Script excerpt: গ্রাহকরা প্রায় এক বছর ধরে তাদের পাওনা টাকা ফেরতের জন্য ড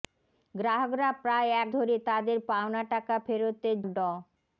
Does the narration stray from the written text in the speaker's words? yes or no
yes